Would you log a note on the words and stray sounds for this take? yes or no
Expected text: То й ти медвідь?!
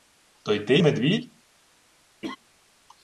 yes